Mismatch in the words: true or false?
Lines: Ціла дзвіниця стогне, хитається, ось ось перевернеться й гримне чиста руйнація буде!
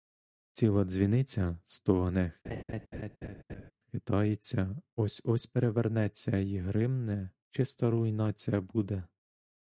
false